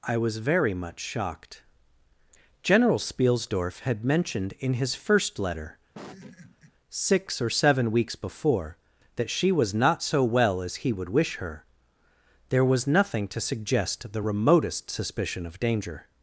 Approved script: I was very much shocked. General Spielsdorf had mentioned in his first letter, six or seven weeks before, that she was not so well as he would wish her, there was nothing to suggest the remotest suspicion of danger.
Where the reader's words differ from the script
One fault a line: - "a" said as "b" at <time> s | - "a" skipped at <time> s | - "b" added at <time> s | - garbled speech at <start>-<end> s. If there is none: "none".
none